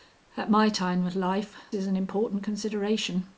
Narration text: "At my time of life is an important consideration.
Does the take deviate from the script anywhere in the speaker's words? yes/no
no